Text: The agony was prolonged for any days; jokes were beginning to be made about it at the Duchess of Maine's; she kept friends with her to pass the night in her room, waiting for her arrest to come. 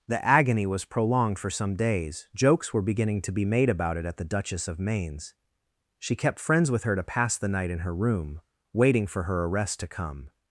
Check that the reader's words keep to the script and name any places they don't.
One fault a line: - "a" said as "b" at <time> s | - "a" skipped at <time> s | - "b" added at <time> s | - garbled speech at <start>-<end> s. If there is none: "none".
- "any" said as "some" at 1.5 s